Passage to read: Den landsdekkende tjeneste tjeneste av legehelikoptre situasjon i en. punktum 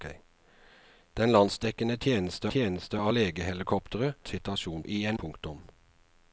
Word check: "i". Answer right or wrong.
right